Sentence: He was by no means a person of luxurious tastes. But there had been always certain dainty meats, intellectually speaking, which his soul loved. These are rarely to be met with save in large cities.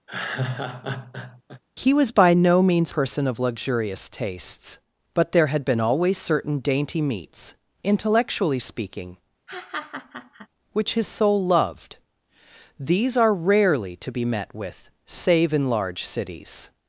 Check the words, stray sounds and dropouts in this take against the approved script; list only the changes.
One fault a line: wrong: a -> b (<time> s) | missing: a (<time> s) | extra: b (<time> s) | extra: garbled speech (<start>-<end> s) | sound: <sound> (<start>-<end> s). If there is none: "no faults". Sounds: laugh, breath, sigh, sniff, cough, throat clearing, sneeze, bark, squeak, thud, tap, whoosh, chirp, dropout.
sound: laugh (0.1-1.6 s)
missing: a (2.9 s)
sound: laugh (9.5-10.5 s)